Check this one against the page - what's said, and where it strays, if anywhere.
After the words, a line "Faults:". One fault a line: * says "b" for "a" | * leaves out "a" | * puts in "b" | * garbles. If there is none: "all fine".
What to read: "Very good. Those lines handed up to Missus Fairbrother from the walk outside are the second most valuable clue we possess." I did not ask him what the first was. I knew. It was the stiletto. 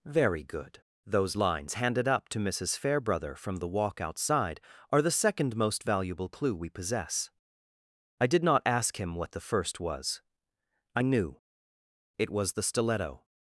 "Very good. Those lines handed up to Missus Fairbrother from the walk outside are the second most valuable clue we possess." I did not ask him what the first was. I knew. It was the stiletto.
Faults:
all fine